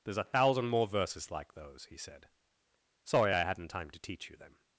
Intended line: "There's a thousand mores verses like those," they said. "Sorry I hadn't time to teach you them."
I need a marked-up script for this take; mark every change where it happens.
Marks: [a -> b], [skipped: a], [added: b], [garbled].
"There's a thousand [mores -> more] verses like those," [they -> he] said. "Sorry I hadn't time to teach you them."